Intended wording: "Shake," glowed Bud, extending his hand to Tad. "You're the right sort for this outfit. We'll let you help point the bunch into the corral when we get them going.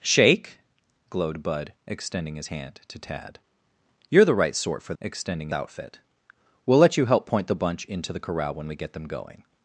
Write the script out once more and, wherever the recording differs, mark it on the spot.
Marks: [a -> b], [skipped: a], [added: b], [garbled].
"Shake," glowed Bud, extending his hand to Tad. "You're the right sort for [this -> extending] outfit. We'll let you help point the bunch into the corral when we get them going.